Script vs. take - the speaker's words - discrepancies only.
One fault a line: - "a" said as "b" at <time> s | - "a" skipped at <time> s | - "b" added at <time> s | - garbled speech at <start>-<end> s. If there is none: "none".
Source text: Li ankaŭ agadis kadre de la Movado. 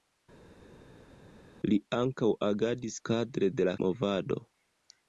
none